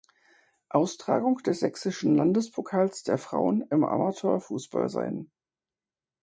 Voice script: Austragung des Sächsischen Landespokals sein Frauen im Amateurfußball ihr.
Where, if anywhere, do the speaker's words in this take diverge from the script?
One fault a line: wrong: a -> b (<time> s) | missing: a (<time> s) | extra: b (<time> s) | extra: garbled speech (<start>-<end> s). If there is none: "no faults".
wrong: sein -> der (3.0 s)
wrong: ihr -> sein (4.9 s)